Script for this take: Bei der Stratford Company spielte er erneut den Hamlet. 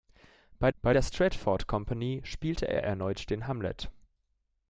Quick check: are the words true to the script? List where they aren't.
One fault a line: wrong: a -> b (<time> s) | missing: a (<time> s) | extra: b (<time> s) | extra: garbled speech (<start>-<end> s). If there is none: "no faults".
extra: bei (0.8 s)